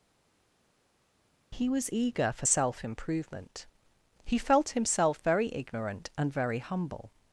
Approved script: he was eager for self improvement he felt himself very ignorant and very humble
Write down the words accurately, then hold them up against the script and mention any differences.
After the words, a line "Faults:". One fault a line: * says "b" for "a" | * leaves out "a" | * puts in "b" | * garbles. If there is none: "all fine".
he was eager for self improvement he felt himself very ignorant and very humble
Faults:
all fine